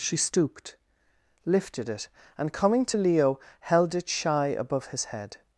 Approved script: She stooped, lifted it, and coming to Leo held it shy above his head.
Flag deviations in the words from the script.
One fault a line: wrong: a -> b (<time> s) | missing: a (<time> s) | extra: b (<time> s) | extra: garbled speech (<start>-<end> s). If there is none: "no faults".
no faults